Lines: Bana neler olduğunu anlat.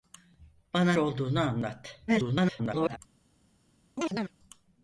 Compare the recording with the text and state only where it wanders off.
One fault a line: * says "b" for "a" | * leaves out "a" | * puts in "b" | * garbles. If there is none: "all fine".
* leaves out "neler"
* garbles